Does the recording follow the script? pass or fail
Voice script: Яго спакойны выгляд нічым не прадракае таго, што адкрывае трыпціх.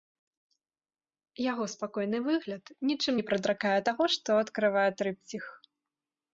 pass